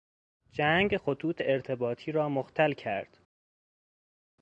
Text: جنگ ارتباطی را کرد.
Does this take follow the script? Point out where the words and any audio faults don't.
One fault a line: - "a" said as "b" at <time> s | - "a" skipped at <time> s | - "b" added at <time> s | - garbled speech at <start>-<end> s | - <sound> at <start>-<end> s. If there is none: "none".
- "خطوط" added at 1.0 s
- "مختل" added at 2.3 s